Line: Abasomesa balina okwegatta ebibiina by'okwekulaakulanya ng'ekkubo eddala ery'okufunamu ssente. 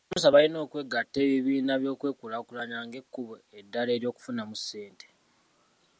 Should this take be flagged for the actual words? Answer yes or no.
no